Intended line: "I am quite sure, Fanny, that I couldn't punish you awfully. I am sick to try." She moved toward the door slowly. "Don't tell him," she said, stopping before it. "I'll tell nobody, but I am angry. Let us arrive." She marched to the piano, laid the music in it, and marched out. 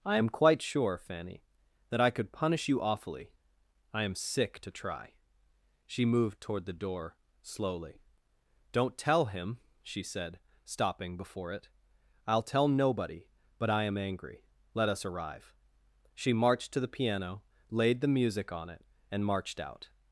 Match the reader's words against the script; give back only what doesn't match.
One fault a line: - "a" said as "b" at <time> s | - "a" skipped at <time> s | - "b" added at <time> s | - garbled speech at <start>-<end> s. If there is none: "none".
- "couldn't" said as "could" at 2.1 s
- "in" said as "on" at 18.5 s